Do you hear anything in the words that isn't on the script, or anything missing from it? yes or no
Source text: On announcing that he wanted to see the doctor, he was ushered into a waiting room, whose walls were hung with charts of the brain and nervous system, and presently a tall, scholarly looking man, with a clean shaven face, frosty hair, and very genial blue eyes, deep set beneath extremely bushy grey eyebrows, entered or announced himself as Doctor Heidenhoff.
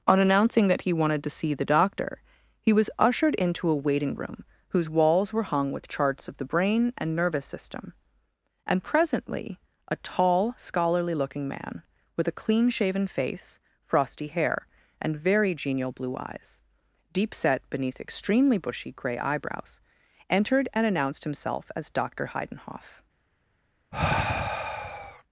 yes